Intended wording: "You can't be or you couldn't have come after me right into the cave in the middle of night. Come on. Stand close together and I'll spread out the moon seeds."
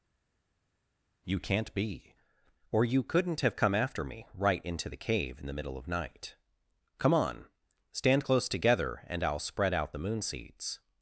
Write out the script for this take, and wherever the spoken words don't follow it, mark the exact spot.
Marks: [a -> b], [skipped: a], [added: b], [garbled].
"You can't be or you couldn't have come after me right into the cave in the middle of night. Come on. Stand close together and I'll spread out the moon seeds."